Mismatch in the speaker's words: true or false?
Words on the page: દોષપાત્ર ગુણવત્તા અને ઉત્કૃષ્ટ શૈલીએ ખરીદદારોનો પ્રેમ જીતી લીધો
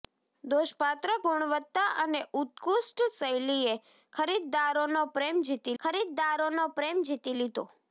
true